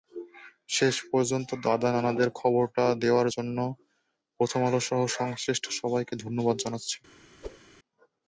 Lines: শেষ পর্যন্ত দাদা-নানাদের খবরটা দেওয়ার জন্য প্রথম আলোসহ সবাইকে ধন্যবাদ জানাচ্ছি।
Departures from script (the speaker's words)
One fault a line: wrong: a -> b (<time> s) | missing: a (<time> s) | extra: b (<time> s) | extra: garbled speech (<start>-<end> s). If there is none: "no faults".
extra: সংশ্লিষ্ট (5.2 s)